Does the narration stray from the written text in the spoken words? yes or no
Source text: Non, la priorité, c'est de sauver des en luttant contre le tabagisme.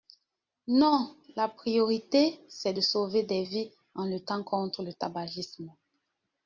yes